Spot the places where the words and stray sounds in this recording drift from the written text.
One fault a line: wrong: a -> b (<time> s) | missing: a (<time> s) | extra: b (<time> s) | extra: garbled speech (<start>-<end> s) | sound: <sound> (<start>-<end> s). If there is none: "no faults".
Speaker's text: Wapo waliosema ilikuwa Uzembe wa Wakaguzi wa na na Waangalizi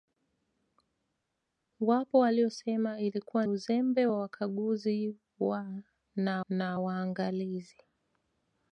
no faults